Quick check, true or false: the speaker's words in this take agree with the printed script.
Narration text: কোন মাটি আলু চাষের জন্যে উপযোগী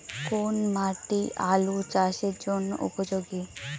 true